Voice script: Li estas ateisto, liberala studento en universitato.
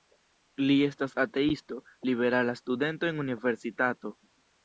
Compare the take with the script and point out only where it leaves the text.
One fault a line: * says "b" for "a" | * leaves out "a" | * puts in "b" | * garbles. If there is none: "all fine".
all fine